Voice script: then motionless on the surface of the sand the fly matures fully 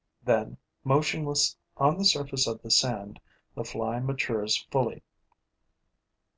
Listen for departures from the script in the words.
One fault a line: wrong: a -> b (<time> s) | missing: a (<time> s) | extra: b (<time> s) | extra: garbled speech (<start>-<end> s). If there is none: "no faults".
no faults